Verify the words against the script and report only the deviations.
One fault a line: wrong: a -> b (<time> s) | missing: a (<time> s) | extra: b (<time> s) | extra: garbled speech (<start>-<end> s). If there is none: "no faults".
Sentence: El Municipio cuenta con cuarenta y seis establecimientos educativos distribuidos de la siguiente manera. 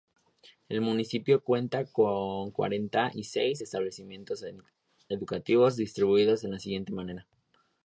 no faults